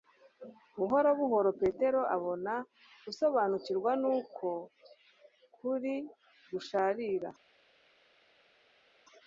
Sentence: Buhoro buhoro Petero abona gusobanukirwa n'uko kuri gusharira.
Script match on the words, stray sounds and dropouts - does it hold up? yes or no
yes